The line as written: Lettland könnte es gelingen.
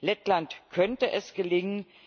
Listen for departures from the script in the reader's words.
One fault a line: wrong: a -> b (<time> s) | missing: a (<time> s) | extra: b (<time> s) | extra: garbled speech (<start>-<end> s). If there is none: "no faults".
no faults